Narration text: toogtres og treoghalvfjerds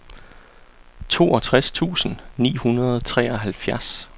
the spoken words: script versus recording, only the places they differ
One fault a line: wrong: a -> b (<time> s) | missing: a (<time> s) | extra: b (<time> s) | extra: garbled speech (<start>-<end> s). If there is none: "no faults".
extra: tusind ni hundrede (1.7 s)